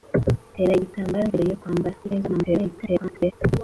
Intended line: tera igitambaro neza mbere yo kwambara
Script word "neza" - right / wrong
wrong